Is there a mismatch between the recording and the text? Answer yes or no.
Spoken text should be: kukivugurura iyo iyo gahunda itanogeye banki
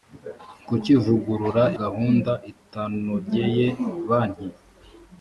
yes